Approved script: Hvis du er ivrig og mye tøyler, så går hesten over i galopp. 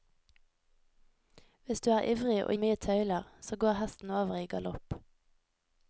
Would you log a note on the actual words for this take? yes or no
no